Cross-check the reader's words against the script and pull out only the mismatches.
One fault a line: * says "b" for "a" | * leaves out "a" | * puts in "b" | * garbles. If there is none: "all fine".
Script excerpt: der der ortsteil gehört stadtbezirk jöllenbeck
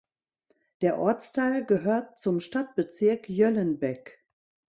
* leaves out "der"
* puts in "zum"